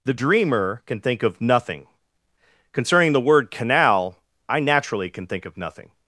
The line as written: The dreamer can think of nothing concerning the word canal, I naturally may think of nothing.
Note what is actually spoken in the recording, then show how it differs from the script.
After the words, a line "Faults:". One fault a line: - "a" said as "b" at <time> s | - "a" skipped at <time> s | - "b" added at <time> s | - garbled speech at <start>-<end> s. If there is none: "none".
The dreamer can think of nothing concerning the word canal, I naturally can think of nothing.
Faults:
- "may" said as "can" at 5.1 s